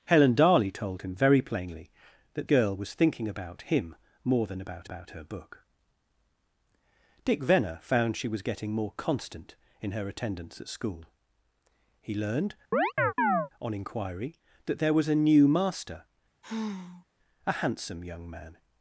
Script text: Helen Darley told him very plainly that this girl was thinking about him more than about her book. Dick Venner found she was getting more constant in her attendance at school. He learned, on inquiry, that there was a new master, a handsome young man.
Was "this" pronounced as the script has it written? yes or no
no